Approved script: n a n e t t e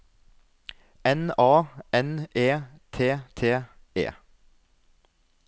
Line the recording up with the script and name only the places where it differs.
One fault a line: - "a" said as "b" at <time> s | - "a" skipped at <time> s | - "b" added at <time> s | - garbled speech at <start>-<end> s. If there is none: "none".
none